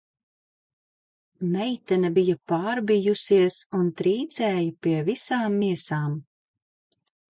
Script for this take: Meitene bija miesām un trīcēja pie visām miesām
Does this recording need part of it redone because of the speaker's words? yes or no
yes